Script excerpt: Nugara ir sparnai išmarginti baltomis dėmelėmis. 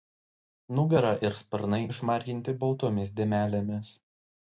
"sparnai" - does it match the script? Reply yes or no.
yes